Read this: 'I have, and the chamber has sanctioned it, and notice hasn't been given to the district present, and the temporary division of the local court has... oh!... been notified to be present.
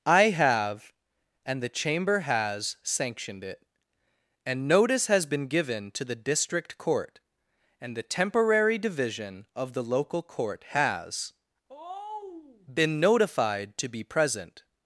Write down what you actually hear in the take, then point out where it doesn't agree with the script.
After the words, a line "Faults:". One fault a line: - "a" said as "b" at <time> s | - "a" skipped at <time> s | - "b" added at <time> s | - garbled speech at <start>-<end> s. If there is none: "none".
'I have, and the chamber has sanctioned it, and notice has been given to the district court, and the temporary division of the local court has... oh!... been notified to be present.
Faults:
- "hasn't" said as "has" at 5.1 s
- "present" said as "court" at 6.8 s